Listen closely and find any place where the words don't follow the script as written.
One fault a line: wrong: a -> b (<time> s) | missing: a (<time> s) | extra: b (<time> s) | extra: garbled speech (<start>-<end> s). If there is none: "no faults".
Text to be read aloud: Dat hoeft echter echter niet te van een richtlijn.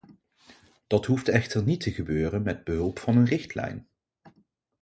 missing: echter (1.6 s)
extra: gebeuren met behulp (1.9 s)